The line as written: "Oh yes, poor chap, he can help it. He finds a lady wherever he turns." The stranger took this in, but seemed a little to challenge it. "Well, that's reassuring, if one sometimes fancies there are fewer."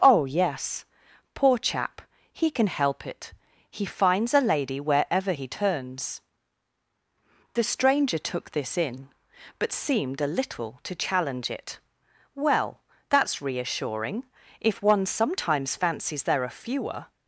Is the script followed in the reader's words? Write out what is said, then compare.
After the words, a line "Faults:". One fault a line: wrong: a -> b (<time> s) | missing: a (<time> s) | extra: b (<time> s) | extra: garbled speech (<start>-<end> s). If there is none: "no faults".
"Oh yes, poor chap, he can help it. He finds a lady wherever he turns." The stranger took this in, but seemed a little to challenge it. "Well, that's reassuring, if one sometimes fancies there are fewer."
Faults:
no faults